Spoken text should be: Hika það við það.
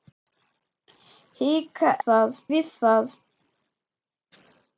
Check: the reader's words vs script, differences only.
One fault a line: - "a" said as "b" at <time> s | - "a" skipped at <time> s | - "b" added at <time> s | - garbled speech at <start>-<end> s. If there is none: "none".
none